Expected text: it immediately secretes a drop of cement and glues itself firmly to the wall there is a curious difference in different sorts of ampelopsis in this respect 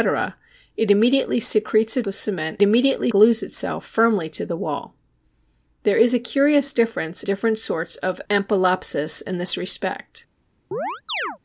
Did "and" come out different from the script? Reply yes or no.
yes